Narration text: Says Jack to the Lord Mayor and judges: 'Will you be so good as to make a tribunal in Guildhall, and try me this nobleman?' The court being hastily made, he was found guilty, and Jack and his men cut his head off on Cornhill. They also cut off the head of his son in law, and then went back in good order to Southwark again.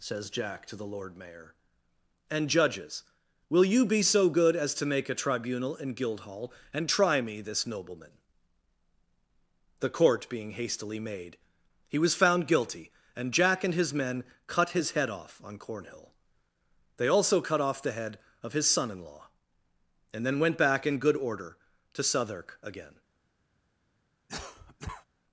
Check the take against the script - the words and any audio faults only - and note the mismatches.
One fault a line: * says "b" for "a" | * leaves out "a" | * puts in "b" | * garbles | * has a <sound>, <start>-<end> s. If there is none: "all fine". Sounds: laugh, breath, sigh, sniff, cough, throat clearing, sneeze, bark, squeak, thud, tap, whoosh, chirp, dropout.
* has a cough, 24.3-25.1 s